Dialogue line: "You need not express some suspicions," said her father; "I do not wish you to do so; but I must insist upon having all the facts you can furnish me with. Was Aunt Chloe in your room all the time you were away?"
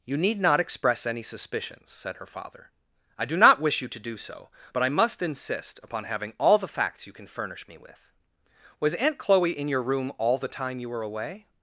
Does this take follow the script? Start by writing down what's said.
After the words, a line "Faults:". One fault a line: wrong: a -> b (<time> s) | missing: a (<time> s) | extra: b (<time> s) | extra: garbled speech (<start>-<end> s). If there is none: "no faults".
"You need not express any suspicions," said her father; "I do not wish you to do so; but I must insist upon having all the facts you can furnish me with. Was Aunt Chloe in your room all the time you were away?"
Faults:
wrong: some -> any (1.1 s)